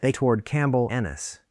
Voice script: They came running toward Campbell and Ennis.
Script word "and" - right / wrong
wrong